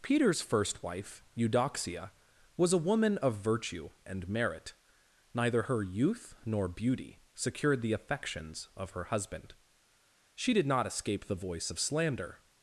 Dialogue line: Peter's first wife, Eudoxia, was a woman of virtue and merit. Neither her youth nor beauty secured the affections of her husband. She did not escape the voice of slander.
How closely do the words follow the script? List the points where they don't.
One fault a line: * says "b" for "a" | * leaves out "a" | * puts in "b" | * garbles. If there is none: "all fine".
all fine